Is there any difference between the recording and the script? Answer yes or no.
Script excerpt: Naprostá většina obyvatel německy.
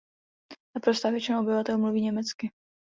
yes